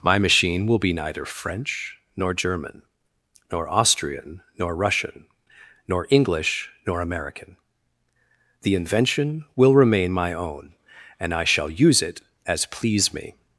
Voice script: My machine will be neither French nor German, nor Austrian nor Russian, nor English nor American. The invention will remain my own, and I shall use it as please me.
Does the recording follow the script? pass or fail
pass